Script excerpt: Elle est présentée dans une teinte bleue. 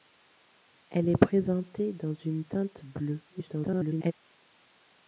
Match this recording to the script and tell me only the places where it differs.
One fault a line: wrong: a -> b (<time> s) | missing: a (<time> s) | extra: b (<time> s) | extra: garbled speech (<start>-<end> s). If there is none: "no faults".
extra: garbled speech (3.3-4.1 s)